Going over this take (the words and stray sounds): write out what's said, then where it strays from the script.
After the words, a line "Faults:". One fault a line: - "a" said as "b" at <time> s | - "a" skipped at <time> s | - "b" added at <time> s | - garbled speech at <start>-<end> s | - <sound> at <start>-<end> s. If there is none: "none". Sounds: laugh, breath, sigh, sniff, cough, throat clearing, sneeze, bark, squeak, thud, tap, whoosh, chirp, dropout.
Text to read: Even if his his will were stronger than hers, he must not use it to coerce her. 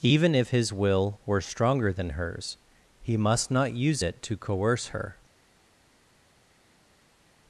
Even if his will were stronger than hers, he must not use it to coerce her.
Faults:
- "his" skipped at 0.7 s